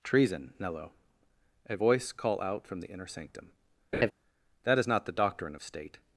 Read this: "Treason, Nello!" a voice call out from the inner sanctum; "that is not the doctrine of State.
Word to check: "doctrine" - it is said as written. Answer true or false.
true